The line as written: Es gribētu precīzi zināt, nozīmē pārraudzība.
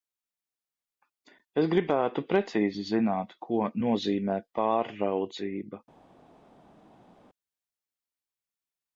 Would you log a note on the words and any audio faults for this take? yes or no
yes